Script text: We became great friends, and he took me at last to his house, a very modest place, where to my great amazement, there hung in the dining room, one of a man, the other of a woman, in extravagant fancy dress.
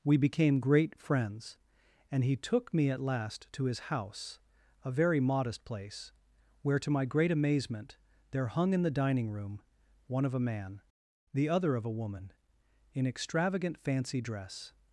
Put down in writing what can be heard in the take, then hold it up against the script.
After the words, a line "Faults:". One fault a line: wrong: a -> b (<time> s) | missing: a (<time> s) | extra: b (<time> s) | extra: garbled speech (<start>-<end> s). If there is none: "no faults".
We became great friends, and he took me at last to his house, a very modest place, where to my great amazement, there hung in the dining room, one of a man, the other of a woman, in extravagant fancy dress.
Faults:
no faults